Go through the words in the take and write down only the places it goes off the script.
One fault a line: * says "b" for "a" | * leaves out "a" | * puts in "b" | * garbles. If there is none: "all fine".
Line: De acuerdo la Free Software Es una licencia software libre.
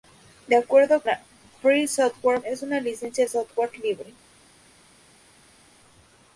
all fine